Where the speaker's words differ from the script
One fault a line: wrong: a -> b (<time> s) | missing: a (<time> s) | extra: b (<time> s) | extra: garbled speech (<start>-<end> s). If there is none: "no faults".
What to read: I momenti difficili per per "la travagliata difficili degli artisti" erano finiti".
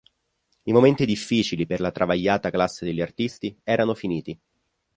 missing: per (1.8 s)
wrong: difficili -> classe (2.5 s)